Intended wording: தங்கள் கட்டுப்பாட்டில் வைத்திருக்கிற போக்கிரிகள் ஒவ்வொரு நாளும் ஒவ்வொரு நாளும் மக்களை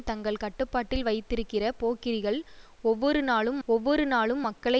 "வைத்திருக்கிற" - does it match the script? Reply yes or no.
yes